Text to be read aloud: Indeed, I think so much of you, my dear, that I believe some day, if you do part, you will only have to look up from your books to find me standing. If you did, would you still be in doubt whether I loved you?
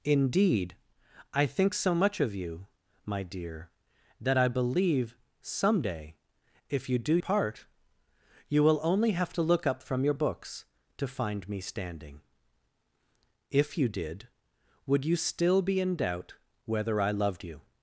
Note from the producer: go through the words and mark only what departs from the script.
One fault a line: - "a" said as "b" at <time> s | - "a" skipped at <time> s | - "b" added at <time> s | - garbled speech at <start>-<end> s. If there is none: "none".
none